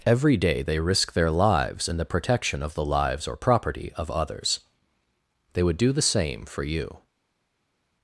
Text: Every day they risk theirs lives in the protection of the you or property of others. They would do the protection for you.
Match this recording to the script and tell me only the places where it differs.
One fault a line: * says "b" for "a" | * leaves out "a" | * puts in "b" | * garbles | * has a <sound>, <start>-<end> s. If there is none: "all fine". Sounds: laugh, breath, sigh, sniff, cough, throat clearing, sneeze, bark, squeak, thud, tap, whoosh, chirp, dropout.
* says "their" for "theirs"
* says "lives" for "you"
* says "same" for "protection"